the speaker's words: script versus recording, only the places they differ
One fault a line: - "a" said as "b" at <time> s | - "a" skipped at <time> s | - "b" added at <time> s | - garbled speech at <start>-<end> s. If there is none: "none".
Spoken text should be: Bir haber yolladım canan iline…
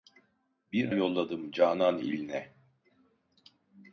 - "haber" skipped at 0.9 s